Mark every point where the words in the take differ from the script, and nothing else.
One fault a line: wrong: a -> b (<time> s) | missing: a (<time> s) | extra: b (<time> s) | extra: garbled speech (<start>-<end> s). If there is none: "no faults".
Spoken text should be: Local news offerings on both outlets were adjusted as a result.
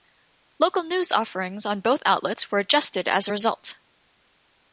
no faults